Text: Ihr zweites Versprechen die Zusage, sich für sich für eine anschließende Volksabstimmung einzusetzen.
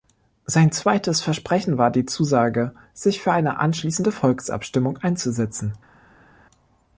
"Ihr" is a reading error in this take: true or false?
true